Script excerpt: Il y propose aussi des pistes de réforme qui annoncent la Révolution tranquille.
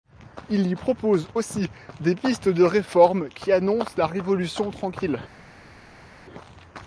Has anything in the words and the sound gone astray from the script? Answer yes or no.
no